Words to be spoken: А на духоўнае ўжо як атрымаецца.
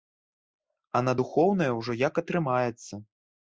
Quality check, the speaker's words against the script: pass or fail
pass